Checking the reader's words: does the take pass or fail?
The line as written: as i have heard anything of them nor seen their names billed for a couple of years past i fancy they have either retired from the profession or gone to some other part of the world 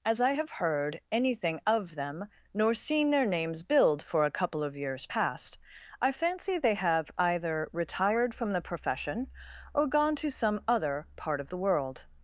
pass